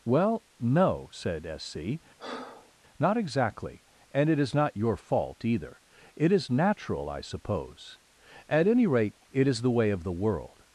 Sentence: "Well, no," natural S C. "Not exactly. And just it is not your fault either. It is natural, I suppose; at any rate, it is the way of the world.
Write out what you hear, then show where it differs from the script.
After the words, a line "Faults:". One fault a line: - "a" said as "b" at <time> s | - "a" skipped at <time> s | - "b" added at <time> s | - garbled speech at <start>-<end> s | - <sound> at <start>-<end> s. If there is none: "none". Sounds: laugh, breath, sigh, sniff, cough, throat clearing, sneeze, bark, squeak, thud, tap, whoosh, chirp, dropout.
"Well, no," said S C. "Not exactly. And it is not your fault either. It is natural, I suppose; at any rate, it is the way of the world.
Faults:
- "natural" said as "said" at 1.1 s
- breath at 2.2-2.7 s
- "just" skipped at 4.3 s